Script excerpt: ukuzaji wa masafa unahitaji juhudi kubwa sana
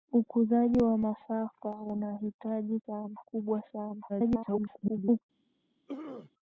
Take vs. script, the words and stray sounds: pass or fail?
fail